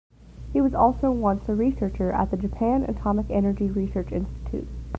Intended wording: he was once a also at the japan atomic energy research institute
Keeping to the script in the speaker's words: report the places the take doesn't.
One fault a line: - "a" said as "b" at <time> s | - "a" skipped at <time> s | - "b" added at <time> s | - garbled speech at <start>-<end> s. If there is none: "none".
- "also" added at 0.7 s
- "also" said as "researcher" at 1.5 s